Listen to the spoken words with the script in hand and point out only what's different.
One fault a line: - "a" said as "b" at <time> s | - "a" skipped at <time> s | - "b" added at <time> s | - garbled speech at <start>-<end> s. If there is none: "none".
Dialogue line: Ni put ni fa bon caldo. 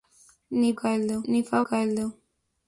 - "put" said as "caldo" at 0.8 s
- "bon" skipped at 1.6 s